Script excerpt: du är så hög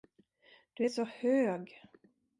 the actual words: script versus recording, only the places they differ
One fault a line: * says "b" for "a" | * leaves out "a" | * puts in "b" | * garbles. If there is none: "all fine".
all fine